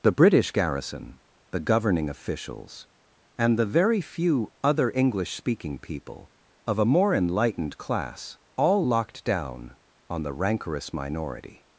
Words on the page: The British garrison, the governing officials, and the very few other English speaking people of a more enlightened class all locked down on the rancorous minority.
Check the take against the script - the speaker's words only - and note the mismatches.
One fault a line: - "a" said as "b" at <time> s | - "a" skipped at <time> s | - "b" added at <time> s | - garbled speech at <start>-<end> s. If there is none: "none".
none